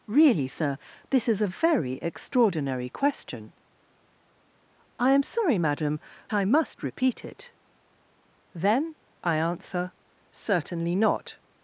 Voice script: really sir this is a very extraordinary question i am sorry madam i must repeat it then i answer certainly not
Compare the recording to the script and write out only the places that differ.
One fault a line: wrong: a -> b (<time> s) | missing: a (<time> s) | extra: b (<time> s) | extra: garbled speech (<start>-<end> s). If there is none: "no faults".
no faults